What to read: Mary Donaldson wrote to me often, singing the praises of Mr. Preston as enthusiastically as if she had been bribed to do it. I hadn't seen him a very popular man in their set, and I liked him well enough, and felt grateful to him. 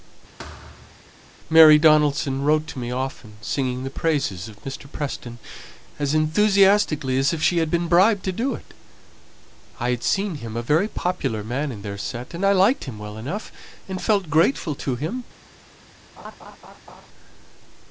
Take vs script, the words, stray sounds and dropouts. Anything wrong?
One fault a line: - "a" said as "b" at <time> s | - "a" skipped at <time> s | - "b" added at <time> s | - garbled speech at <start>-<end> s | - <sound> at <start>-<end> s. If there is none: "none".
- thud at 0.4-1.0 s
- "hadn't" said as "had" at 9.9 s
- laugh at 16.2-17.1 s